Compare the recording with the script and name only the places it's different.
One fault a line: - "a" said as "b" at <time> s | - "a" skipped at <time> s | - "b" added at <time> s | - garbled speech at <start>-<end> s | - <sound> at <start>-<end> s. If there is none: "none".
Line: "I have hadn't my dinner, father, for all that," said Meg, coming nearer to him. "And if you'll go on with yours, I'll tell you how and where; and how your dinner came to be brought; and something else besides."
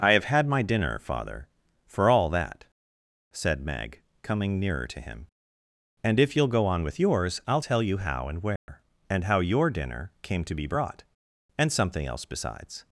- "hadn't" said as "had" at 0.2 s
- dropout at 8.6-8.7 s